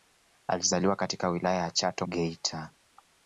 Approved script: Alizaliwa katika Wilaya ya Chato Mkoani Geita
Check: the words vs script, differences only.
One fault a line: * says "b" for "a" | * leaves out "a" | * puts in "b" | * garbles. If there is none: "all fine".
* leaves out "Mkoani"